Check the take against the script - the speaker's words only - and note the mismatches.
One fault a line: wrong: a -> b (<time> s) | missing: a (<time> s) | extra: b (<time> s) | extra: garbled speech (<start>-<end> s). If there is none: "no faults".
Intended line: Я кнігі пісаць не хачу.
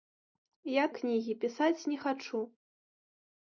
no faults